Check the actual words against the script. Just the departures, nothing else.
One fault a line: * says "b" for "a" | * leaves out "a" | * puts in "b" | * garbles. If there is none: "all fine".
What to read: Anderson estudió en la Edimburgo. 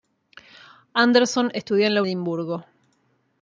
all fine